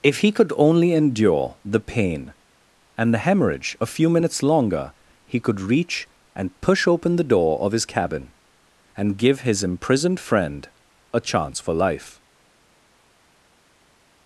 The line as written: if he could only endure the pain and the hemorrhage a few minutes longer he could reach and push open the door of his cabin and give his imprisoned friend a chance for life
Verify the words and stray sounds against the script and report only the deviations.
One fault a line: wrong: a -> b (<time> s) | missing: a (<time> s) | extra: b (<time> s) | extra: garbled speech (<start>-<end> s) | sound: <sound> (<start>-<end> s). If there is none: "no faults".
no faults